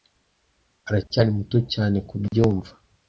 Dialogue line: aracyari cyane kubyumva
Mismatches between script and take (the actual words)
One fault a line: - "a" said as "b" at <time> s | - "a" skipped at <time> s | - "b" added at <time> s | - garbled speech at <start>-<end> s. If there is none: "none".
- "muto" added at 1.4 s